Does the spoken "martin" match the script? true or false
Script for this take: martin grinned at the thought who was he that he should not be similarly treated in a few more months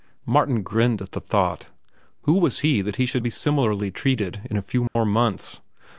true